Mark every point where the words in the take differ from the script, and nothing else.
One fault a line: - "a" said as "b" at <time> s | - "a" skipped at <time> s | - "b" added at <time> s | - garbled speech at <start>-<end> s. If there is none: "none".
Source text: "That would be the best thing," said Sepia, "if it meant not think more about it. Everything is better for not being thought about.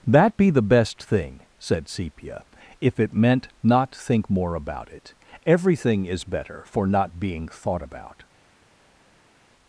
- "would" skipped at 0.3 s